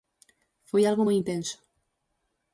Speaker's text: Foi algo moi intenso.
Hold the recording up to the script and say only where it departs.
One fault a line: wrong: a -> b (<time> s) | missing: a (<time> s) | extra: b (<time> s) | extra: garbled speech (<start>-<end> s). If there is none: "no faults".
no faults